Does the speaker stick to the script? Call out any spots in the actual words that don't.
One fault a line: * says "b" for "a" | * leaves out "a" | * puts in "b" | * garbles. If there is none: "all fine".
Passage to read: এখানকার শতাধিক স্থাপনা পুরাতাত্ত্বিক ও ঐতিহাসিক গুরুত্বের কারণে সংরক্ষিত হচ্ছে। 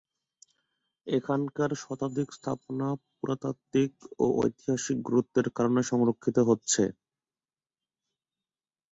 all fine